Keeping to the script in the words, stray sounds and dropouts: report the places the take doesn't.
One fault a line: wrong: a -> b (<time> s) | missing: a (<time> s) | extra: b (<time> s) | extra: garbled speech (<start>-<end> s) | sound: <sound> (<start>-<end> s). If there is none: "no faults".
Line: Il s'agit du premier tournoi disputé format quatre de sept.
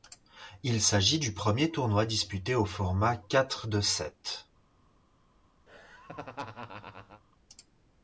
extra: au (2.5 s)
sound: laugh (5.7-7.2 s)